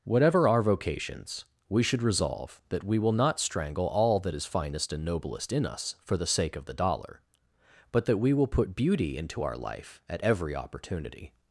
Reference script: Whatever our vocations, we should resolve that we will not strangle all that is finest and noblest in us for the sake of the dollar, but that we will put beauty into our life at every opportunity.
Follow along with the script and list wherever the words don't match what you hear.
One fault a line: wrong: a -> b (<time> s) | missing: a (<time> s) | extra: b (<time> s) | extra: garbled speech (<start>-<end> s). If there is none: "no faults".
no faults